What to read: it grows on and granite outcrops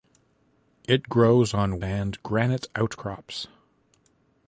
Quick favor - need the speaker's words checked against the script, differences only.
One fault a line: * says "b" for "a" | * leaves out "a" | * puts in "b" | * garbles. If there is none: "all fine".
all fine